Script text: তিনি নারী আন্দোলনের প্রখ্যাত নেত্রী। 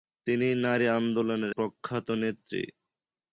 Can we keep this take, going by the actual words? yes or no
yes